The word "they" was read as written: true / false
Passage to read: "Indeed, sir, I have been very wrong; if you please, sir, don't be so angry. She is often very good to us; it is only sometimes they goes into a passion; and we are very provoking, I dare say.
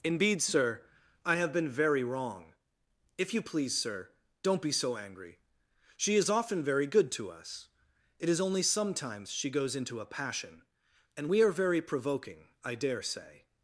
false